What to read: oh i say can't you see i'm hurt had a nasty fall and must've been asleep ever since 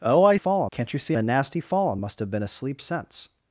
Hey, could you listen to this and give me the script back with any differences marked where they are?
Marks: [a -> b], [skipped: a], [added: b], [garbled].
oh i [say -> fall] can't you see [skipped: i'm hurt had] a nasty fall and must've been asleep [skipped: ever] since